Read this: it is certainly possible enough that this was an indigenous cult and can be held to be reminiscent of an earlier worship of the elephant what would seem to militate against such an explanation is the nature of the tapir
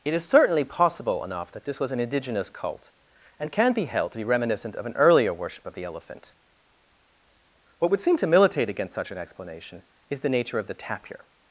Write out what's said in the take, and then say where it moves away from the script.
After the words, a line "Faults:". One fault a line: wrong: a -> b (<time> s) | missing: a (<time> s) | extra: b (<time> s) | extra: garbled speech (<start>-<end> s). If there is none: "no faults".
it is certainly possible enough that this was an indigenous cult and can be held to be reminiscent of an earlier worship of the elephant what would seem to militate against such an explanation is the nature of the tapir
Faults:
no faults